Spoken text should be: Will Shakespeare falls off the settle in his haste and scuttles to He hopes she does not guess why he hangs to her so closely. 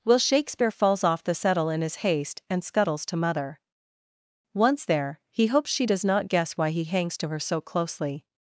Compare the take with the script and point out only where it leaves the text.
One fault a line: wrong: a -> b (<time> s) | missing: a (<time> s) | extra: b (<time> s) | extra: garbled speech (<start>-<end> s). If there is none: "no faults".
extra: Mother Once there (3.2 s)